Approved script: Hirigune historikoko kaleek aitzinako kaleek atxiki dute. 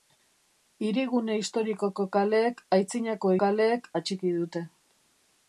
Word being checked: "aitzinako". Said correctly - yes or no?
yes